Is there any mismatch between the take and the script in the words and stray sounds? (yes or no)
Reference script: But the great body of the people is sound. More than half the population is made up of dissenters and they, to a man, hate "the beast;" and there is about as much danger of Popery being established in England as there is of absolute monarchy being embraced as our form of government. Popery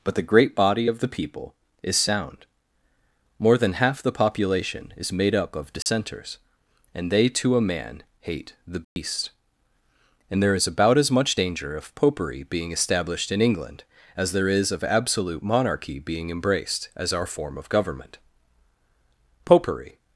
yes